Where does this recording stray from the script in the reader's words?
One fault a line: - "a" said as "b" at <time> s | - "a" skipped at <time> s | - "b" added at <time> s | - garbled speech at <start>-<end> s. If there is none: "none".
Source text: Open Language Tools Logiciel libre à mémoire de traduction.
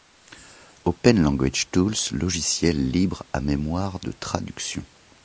none